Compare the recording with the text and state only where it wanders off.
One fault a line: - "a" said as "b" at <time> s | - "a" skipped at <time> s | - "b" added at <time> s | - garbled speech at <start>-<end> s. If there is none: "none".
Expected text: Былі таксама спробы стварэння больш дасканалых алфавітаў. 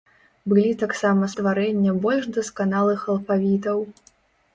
- "спробы" skipped at 1.3 s